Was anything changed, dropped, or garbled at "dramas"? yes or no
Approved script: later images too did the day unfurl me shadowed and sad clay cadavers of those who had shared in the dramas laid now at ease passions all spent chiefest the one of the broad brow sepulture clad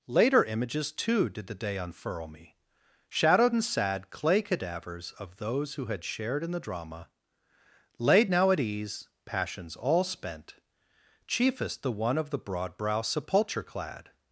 yes